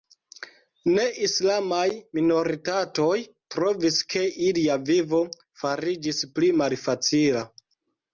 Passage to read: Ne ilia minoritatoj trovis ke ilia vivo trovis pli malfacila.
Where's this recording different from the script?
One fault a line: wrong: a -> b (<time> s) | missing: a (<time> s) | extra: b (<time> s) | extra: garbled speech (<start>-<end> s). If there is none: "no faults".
wrong: ilia -> islamaj (1.2 s)
wrong: trovis -> fariĝis (5.6 s)